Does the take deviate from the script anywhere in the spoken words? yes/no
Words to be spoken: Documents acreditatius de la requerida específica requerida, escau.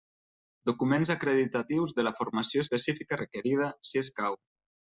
yes